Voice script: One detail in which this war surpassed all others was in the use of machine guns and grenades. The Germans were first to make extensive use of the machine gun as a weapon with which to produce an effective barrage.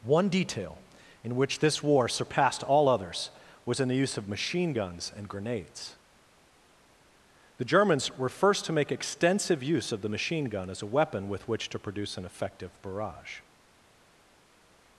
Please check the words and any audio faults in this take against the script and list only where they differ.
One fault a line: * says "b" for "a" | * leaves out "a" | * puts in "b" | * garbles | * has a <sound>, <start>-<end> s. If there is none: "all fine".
all fine